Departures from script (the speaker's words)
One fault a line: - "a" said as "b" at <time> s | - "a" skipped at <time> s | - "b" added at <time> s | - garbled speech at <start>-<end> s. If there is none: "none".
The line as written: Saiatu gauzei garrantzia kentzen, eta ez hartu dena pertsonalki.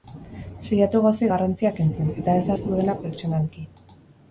none